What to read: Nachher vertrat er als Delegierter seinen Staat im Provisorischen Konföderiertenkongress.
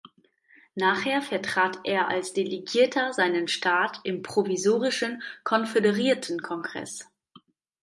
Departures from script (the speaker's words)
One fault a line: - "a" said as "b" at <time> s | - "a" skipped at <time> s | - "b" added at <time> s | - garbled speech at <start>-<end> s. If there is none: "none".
none